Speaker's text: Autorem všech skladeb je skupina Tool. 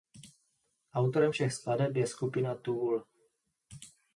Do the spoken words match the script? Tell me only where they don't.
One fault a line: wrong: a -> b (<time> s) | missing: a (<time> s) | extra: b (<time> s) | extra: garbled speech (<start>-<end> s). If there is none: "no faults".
no faults